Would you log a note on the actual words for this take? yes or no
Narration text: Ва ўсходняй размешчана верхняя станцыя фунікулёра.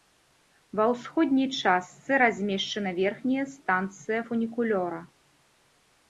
yes